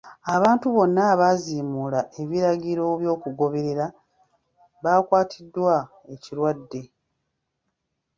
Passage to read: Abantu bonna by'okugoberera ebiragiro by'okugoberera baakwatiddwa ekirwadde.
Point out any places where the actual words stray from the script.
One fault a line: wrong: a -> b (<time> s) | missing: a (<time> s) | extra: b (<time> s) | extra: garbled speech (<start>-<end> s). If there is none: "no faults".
wrong: by'okugoberera -> abaaziimuula (1.1 s)